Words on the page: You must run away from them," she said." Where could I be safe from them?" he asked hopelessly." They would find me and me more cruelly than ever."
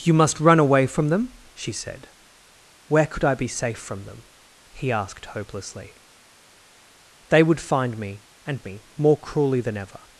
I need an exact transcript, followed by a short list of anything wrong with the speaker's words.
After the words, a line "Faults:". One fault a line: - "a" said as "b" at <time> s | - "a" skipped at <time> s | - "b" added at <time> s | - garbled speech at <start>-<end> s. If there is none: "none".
You must run away from them," she said." Where could I be safe from them?" he asked hopelessly." They would find me and me more cruelly than ever."
Faults:
none